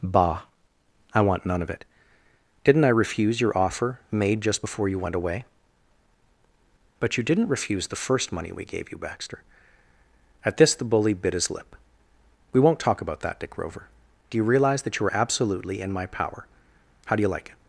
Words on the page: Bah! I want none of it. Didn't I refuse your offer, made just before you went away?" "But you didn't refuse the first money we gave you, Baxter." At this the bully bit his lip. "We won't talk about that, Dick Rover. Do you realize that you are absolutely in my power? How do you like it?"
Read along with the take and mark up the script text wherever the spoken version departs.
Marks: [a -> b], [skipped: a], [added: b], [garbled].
Bah! I want none of it. Didn't I refuse your offer, made just before you went away?" "But you didn't refuse the first money we gave you, Baxter." At this the bully bit his lip. "We won't talk about that, Dick Rover. Do you realize that you are absolutely in my power? How do you like it?"